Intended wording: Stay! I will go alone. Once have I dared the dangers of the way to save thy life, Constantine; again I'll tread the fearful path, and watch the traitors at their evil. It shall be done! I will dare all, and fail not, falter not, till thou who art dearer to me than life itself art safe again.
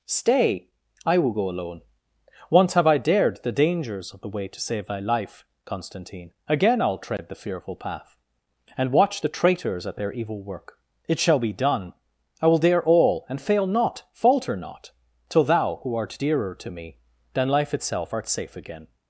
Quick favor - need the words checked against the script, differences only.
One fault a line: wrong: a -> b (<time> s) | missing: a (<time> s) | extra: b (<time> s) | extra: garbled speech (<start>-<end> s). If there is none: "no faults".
extra: work (10.4 s)